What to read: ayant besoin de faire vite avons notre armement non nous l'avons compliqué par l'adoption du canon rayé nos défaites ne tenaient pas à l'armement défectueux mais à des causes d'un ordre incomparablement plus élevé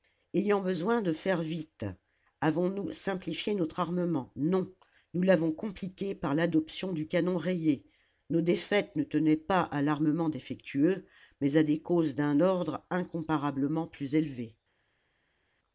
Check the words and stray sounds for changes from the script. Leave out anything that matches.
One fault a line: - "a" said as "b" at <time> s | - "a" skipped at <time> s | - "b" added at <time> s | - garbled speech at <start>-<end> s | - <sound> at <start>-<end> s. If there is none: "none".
- "nous simplifié" added at 2.7 s